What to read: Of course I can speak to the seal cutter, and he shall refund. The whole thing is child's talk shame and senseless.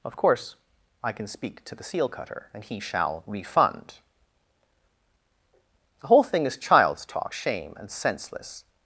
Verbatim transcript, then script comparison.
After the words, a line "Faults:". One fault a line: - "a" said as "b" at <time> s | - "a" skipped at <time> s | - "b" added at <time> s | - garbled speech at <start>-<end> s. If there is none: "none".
Of course I can speak to the seal cutter, and he shall refund. The whole thing is child's talk shame and senseless.
Faults:
none